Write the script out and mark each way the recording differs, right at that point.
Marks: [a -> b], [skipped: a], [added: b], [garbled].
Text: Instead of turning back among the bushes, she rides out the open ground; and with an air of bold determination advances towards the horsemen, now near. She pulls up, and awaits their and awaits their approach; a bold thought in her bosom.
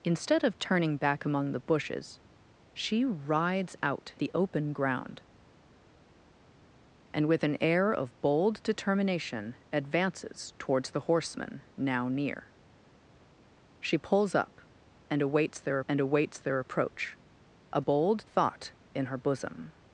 Instead of turning back among the bushes, she rides out the open ground; and with an air of bold determination advances towards the horsemen, now near. She pulls up, and awaits their and awaits their approach; a bold thought in her bosom.